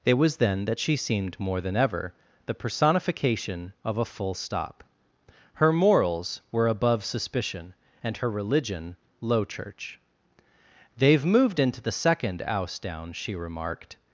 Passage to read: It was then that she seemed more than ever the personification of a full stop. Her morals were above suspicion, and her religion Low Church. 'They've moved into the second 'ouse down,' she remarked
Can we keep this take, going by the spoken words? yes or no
yes